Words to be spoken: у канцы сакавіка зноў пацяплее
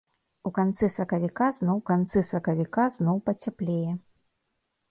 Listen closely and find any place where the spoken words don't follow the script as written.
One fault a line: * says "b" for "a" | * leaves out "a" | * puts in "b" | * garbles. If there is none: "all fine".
* puts in "канцы сакавіка зноў"